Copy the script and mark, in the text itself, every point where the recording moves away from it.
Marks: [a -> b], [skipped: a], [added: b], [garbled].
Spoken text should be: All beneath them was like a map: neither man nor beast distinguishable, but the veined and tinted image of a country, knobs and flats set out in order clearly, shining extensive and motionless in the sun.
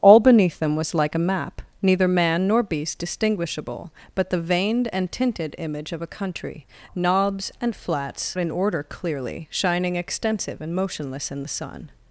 All beneath them was like a map: neither man nor beast distinguishable, but the veined and tinted image of a country, knobs and flats [skipped: set out] in order clearly, shining extensive and motionless in the sun.